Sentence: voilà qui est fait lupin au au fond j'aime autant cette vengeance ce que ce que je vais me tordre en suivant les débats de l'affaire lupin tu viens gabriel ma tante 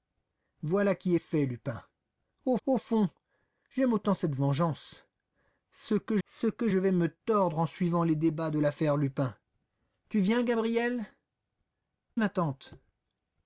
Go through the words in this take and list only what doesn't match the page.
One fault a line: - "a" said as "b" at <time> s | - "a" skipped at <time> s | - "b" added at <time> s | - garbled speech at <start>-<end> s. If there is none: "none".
none